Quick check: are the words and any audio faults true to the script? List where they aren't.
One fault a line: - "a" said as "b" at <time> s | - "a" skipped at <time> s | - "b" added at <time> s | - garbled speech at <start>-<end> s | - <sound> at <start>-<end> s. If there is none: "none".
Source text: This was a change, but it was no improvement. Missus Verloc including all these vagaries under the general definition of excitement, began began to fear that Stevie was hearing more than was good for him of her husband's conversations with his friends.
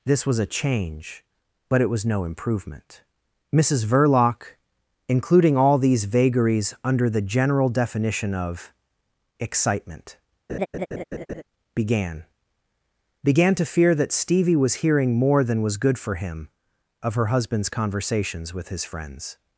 - laugh at 10.5-11.4 s